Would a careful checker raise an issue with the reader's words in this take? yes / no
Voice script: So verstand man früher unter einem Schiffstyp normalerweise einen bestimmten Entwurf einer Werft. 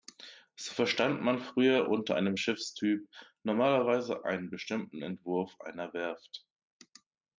no